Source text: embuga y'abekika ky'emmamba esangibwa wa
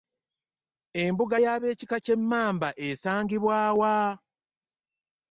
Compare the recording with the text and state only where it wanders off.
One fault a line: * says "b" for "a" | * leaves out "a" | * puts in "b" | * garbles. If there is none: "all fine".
all fine